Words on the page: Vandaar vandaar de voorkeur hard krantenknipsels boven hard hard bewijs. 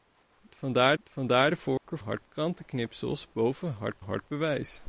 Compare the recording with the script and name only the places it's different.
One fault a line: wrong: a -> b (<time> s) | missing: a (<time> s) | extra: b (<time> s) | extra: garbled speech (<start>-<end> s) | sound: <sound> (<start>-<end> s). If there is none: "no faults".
sound: dropout (1.8-1.8 s)